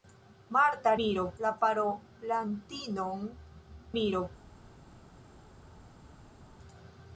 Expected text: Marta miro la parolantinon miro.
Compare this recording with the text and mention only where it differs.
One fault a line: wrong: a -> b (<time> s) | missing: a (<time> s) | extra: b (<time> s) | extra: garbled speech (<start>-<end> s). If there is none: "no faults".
no faults